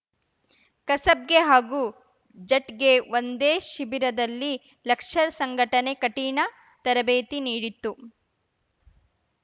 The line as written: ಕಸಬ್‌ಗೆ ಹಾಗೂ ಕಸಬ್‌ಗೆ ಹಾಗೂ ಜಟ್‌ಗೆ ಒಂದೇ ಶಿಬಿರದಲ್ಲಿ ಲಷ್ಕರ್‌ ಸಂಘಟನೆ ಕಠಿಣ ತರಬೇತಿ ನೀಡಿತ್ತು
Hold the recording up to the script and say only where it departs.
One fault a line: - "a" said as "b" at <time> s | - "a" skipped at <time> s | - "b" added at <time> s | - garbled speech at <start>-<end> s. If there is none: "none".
- "ಕಸಬ್‌ಗೆ ಹಾಗೂ" skipped at 1.8 s